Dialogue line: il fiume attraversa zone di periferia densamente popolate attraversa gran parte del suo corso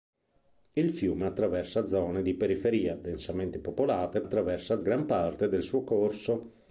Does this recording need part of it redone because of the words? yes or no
no